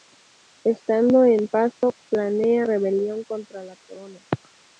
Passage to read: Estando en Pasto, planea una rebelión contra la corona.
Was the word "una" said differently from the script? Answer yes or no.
yes